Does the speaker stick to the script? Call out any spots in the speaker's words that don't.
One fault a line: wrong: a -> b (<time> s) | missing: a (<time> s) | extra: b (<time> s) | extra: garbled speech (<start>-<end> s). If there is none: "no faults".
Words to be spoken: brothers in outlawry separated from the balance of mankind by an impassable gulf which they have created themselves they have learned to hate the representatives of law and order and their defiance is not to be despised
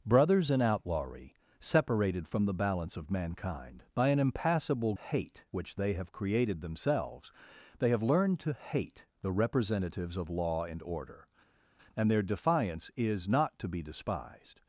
wrong: gulf -> hate (4.9 s)